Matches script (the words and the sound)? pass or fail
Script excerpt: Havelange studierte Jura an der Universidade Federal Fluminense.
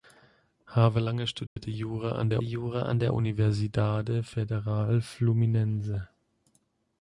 fail